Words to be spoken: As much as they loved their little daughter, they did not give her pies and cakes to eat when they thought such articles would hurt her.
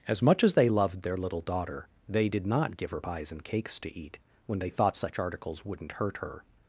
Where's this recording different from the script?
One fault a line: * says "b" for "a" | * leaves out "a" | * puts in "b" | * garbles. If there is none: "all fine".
* says "wouldn't" for "would"